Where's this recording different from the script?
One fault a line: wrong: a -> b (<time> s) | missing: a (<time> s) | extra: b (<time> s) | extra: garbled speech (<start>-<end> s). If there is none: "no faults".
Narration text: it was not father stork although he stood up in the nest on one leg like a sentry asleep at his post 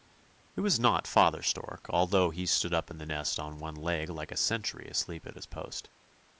no faults